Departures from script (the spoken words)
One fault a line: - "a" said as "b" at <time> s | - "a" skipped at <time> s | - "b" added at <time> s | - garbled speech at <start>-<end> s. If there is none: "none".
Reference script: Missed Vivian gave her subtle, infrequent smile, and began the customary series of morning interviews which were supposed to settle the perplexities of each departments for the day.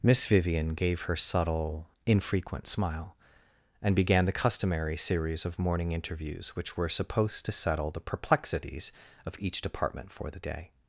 - "Missed" said as "Miss" at 0.0 s
- "departments" said as "department" at 9.6 s